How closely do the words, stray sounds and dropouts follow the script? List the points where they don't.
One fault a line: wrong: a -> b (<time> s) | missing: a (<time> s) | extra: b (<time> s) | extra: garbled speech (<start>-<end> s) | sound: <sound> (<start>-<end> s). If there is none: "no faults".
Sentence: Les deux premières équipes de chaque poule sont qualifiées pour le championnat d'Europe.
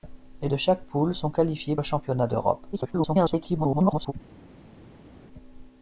missing: deux premières équipes (0.5 s)
missing: pour (1.8 s)
extra: garbled speech (2.7-4.1 s)